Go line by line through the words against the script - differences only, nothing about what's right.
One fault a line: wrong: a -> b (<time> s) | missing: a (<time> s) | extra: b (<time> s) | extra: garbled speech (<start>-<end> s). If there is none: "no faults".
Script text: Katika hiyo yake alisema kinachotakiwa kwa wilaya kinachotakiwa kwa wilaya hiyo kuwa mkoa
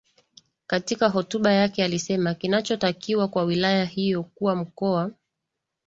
wrong: hiyo -> hotuba (1.1 s)
missing: kinachotakiwa kwa wilaya (3.9 s)